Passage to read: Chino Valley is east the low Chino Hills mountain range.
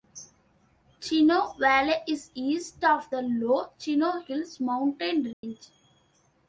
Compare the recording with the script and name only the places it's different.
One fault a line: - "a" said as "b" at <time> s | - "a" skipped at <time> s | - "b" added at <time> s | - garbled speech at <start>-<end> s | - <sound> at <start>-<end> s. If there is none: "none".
- "of" added at 2.8 s
- dropout at 5.3-5.4 s